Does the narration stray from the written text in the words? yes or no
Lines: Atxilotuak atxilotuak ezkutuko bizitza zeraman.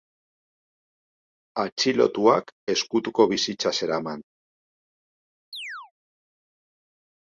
yes